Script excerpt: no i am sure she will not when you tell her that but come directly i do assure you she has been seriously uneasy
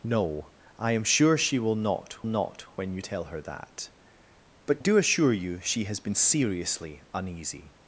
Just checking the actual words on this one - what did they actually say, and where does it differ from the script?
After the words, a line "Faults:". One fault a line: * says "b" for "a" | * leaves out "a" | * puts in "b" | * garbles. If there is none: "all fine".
no i am sure she will not not when you tell her that but do assure you she has been seriously uneasy
Faults:
* puts in "not"
* leaves out "come directly i"